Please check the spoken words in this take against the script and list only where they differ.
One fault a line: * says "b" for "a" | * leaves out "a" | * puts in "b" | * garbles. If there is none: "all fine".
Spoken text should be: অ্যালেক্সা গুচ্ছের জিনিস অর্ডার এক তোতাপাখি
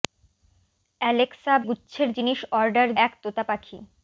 all fine